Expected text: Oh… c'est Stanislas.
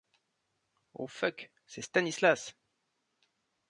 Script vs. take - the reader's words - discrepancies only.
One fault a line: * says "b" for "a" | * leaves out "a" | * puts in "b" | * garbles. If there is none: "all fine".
* puts in "fuck"